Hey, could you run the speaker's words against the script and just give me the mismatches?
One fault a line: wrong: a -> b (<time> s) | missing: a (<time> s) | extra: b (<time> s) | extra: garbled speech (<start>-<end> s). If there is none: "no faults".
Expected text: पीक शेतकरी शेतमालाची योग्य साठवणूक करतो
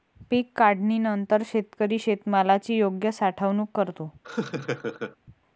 extra: काढणीनंतर (0.6 s)